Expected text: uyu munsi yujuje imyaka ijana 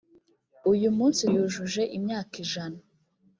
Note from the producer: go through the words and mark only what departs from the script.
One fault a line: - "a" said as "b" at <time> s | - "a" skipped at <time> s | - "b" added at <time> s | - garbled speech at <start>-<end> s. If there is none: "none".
none